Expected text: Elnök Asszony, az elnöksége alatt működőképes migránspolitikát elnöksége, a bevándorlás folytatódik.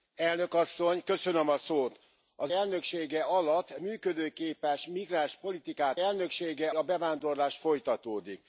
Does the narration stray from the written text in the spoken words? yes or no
no